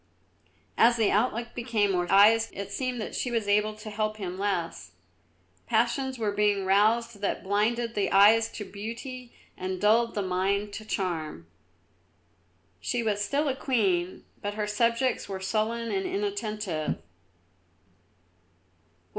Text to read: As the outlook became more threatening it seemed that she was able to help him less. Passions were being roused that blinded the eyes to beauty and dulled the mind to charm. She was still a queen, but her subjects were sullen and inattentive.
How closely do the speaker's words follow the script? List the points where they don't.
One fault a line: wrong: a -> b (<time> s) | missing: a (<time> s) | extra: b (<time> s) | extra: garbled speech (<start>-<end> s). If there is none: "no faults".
wrong: threatening -> eyes (2.1 s)